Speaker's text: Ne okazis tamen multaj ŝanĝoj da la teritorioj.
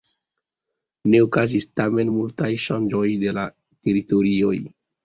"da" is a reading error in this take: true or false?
true